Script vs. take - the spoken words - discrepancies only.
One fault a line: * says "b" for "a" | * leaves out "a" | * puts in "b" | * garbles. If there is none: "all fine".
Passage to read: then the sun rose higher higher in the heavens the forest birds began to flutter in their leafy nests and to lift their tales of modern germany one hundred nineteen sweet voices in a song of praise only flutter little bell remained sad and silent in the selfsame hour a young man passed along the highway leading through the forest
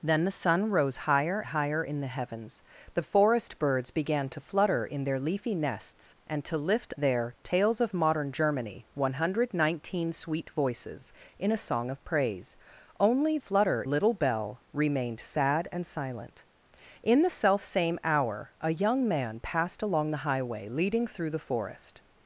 all fine